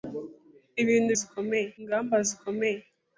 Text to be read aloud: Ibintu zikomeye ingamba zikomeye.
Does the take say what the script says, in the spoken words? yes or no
yes